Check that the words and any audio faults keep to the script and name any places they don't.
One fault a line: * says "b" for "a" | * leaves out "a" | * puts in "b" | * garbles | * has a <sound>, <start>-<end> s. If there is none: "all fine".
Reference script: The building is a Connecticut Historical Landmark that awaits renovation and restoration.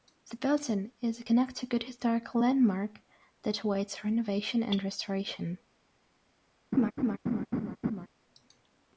* has a laugh, 6.7-8.1 s